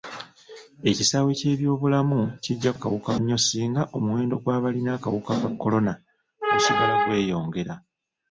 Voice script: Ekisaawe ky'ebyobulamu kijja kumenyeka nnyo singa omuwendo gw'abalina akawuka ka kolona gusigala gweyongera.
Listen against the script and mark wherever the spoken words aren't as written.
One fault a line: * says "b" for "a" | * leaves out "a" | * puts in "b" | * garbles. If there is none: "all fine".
* says "akawuka" for "kumenyeka"